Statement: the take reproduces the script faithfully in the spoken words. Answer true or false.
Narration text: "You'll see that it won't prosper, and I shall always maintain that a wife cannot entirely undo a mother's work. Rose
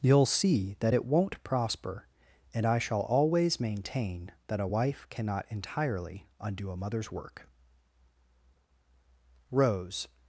true